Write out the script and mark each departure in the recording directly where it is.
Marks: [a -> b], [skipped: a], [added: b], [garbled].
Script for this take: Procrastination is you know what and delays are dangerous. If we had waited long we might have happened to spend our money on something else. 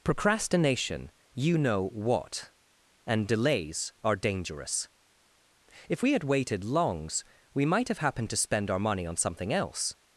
Procrastination [skipped: is] you know what and delays are dangerous. If we had waited [long -> longs] we might have happened to spend our money on something else.